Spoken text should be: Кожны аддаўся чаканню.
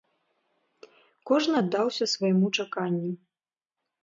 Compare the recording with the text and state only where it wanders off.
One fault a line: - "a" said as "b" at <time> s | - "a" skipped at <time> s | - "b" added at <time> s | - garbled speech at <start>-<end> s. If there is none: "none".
- "свайму" added at 2.1 s